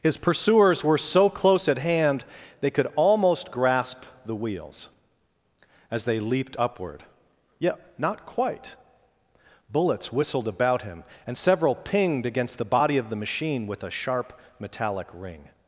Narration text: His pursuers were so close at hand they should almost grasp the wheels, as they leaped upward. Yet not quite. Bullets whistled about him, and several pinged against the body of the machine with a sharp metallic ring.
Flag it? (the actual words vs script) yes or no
yes